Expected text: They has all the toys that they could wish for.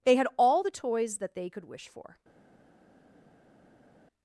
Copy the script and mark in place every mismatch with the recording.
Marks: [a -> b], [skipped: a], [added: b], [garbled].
They [has -> had] all the toys that they could wish for.